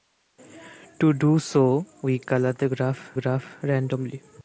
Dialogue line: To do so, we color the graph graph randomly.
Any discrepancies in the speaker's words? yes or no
no